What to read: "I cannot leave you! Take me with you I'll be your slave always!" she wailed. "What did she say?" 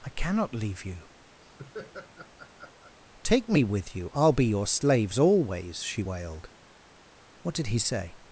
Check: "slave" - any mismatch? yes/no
yes